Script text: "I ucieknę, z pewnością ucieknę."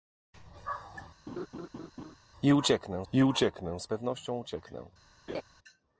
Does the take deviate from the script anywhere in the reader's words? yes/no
yes